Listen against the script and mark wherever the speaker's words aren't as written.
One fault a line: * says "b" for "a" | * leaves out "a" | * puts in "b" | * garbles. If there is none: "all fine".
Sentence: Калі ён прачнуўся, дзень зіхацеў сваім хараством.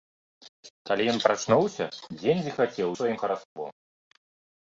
all fine